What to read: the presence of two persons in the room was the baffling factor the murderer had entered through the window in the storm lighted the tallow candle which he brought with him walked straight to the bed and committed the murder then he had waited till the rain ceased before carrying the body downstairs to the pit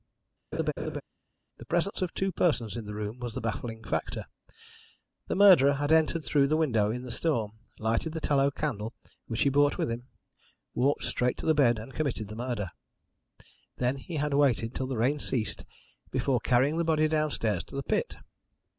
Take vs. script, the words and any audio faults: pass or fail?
fail